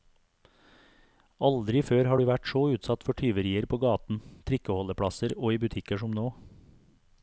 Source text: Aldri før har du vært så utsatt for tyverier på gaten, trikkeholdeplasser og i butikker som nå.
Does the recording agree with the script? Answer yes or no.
yes